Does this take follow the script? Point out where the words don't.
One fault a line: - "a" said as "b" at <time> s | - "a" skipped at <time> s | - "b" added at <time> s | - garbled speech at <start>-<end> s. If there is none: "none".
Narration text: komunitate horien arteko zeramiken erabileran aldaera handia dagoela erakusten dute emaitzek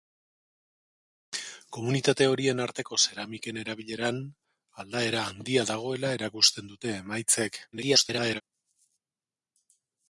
- garbled speech at 7.7-8.4 s